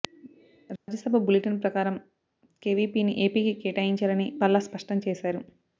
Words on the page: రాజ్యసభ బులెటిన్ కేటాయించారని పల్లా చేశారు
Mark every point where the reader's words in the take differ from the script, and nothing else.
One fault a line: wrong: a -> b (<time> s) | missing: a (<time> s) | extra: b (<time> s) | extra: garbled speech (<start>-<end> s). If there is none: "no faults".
extra: ప్రకారం కేవీపీని ఏపీకి (1.6 s)
extra: స్పష్టం (4.6 s)